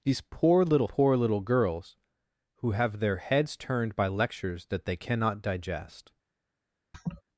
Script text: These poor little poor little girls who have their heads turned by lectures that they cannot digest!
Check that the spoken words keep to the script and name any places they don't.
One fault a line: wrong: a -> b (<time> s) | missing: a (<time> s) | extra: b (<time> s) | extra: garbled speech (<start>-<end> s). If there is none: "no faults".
no faults